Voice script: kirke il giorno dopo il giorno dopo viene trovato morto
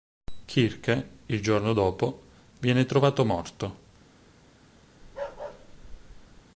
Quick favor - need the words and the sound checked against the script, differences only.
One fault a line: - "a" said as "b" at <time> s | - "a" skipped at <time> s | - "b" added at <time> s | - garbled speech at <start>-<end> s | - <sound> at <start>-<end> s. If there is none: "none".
- "il giorno dopo" skipped at 2.2 s
- bark at 5.0-6.4 s